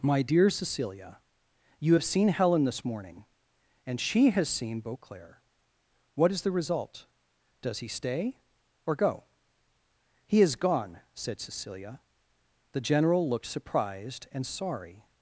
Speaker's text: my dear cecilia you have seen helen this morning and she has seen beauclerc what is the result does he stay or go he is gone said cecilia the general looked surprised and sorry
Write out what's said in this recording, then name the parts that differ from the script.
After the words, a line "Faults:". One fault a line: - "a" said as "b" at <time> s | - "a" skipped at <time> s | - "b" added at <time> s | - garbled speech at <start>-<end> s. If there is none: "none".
my dear cecilia you have seen helen this morning and she has seen beauclerc what is the result does he stay or go he is gone said cecilia the general looked surprised and sorry
Faults:
none